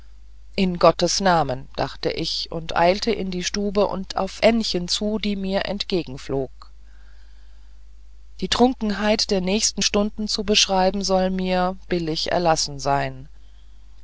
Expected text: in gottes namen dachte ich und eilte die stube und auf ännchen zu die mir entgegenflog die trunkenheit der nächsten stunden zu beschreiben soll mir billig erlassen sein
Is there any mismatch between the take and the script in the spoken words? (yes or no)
yes